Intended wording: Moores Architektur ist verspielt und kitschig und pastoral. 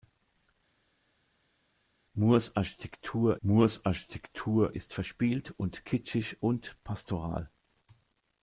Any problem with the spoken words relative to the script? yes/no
yes